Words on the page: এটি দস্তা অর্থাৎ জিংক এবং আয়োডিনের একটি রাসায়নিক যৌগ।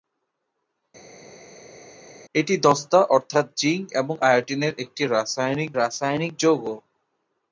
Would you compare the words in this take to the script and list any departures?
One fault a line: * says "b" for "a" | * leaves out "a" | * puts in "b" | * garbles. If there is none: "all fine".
* puts in "রাসায়নিক"